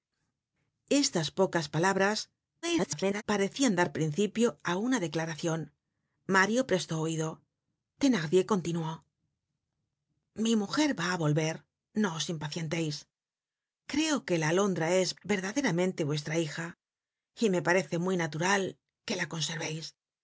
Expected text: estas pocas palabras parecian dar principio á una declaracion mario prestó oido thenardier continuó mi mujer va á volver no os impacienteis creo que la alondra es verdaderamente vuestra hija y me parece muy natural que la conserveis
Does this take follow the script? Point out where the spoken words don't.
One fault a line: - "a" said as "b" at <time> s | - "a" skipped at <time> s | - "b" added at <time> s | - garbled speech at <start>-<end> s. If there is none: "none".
- garbled speech at 2.6-3.2 s